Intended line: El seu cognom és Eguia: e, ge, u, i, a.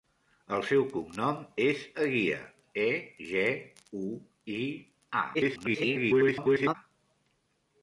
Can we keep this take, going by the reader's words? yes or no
no